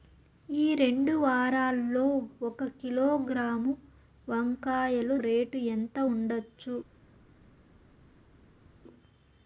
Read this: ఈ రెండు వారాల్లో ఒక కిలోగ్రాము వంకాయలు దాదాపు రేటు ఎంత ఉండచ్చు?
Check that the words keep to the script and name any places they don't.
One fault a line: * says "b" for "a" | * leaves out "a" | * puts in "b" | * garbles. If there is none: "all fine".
* leaves out "దాదాపు"